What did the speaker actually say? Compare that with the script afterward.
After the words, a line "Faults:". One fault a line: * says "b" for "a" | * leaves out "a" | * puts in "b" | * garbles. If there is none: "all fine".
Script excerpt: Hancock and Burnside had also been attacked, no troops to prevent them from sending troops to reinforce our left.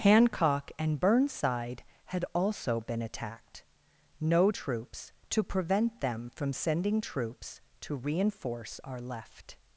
Hancock and Burnside had also been attacked, no troops to prevent them from sending troops to reinforce our left.
Faults:
all fine